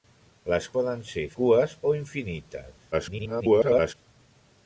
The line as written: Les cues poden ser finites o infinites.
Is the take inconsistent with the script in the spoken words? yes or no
yes